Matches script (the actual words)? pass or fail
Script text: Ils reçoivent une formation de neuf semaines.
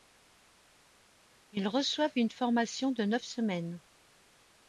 pass